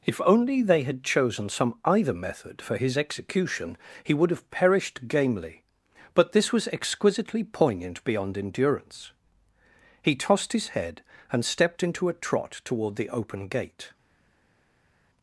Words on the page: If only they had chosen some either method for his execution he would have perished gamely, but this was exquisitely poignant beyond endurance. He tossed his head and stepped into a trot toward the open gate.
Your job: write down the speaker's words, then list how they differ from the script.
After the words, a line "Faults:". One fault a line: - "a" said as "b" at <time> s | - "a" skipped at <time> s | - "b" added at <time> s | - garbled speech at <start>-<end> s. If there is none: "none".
If only they had chosen some either method for his execution he would have perished gamely, but this was exquisitely poignant beyond endurance. He tossed his head and stepped into a trot toward the open gate.
Faults:
none